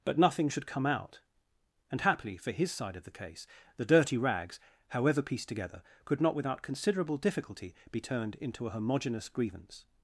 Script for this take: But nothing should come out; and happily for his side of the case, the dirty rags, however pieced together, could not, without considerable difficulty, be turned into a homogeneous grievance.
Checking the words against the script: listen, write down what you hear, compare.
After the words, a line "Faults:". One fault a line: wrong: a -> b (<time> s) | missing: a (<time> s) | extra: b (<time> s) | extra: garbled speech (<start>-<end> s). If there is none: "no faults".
But nothing should come out; and happily for his side of the case, the dirty rags, however pieced together, could not, without considerable difficulty, be turned into a homogeneous grievance.
Faults:
no faults